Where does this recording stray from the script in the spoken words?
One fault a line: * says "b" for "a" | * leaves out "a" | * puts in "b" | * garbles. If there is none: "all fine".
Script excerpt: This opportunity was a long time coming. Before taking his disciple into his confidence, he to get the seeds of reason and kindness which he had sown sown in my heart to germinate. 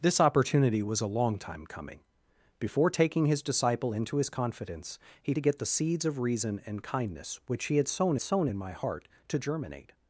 all fine